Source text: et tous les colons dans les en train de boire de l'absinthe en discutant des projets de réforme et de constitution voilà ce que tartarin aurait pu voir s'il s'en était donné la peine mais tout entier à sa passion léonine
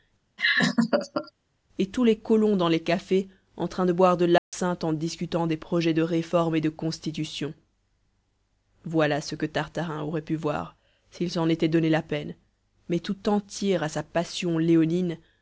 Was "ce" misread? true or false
false